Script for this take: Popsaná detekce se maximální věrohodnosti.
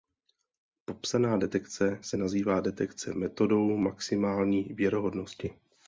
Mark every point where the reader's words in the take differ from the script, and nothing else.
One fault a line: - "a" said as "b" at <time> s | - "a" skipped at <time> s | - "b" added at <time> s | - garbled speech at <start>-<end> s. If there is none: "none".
- "nazývá detekce metodou" added at 2.2 s